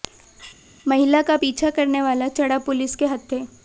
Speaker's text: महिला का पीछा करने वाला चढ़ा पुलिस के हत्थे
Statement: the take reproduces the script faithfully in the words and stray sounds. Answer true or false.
true